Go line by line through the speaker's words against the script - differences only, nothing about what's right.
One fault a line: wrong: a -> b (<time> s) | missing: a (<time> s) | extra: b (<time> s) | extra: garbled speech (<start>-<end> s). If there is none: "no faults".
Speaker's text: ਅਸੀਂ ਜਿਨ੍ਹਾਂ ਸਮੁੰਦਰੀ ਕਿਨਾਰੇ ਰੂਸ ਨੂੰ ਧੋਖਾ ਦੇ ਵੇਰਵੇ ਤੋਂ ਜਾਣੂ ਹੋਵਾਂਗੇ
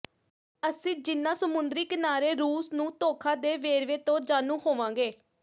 no faults